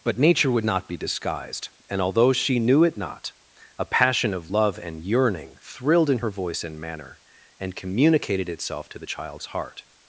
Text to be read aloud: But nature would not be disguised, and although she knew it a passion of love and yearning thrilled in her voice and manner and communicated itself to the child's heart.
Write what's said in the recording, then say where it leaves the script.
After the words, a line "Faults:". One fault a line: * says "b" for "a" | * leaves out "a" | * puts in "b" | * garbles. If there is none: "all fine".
But nature would not be disguised, and although she knew it not, a passion of love and yearning thrilled in her voice and manner and communicated itself to the child's heart.
Faults:
* puts in "not"